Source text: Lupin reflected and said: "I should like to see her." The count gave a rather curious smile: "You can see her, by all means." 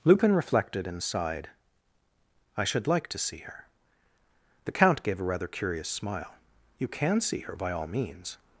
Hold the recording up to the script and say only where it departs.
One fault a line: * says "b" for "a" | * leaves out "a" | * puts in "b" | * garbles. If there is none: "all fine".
* says "sighed" for "said"